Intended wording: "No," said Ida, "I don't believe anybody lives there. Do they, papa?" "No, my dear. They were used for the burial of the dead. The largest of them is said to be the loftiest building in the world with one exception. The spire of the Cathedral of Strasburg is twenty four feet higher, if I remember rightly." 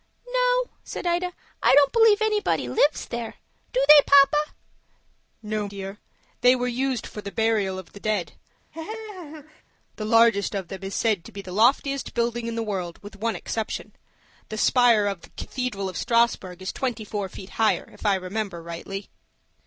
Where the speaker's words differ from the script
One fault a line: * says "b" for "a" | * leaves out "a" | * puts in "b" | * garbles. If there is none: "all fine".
* leaves out "my"